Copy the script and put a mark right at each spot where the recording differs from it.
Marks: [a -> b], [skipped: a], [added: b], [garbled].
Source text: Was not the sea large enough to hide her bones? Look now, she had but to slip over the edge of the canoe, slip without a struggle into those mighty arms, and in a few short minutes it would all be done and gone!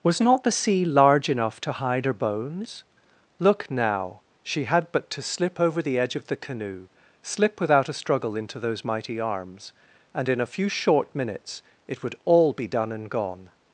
Was not the sea large enough to hide her bones? Look now, she had but to slip over the edge of the canoe, slip without a struggle into those mighty arms, and in a few short minutes it would all be done and gone!